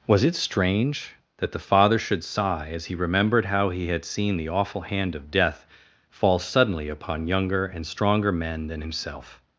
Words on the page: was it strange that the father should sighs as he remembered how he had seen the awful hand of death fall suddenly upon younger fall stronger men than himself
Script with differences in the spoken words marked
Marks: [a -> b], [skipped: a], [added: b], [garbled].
was it strange that the father should [sighs -> sigh] as he remembered how he had seen the awful hand of death fall suddenly upon younger [fall -> and] stronger men than himself